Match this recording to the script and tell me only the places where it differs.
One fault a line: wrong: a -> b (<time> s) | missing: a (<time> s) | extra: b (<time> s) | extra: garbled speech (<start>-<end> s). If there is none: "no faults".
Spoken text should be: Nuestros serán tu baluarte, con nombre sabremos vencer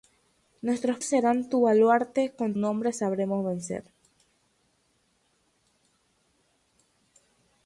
no faults